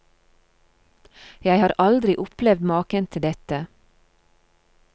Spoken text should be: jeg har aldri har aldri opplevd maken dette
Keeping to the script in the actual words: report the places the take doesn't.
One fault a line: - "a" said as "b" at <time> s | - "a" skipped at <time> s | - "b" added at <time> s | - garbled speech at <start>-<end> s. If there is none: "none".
- "har aldri" skipped at 2.2 s
- "til" added at 3.1 s